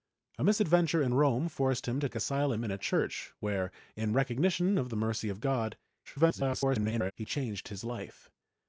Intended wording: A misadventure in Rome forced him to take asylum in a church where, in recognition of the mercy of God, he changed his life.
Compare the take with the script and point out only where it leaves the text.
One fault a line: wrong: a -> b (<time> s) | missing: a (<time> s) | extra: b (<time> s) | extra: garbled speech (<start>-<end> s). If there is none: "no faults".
missing: take (2.1 s)
extra: garbled speech (6.1-7.1 s)